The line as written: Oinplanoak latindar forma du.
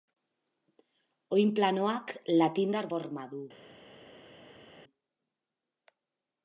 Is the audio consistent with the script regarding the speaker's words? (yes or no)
yes